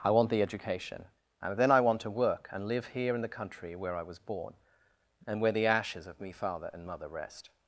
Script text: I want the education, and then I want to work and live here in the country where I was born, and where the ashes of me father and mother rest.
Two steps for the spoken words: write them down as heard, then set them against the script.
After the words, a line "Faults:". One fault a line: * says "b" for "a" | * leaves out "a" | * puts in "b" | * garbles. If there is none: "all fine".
I want the education, and then I want to work and live here in the country where I was born, and where the ashes of me father and mother rest.
Faults:
all fine